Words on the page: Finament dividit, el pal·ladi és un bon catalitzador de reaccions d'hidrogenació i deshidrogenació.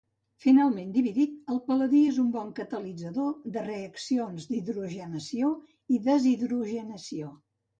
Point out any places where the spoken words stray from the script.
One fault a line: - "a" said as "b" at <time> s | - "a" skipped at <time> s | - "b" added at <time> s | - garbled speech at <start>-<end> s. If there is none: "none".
none